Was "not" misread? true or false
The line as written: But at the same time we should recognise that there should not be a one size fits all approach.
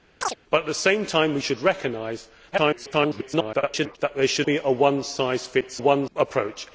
true